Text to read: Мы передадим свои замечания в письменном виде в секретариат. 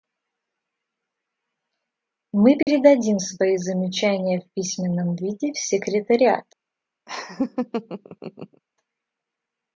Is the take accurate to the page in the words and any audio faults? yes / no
no